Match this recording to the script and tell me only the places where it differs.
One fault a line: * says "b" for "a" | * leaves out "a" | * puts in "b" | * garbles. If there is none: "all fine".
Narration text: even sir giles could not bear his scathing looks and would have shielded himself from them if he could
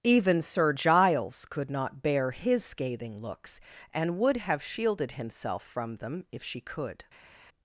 * says "she" for "he"